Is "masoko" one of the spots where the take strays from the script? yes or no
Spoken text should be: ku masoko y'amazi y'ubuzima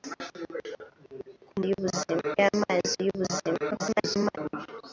yes